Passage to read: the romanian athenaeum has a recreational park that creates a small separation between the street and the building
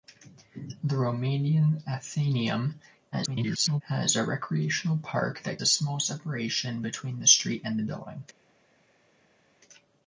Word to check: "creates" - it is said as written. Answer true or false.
false